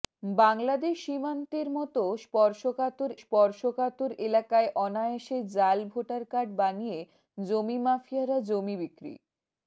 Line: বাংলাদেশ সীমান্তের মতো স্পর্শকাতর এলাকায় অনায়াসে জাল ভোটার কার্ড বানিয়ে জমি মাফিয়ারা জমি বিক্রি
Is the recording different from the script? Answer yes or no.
yes